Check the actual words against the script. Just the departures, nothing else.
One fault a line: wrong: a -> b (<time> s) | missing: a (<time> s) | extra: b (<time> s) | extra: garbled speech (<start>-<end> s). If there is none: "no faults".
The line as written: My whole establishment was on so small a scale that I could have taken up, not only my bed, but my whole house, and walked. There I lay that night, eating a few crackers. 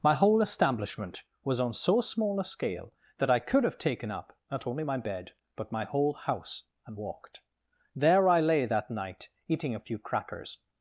no faults